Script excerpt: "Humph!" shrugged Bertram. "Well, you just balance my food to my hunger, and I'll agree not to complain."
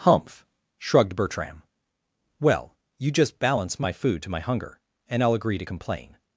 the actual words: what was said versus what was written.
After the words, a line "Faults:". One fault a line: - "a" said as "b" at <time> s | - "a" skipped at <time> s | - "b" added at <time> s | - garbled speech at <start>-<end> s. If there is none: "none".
"Humph!" shrugged Bertram. "Well, you just balance my food to my hunger, and I'll agree to complain."
Faults:
- "not" skipped at 5.6 s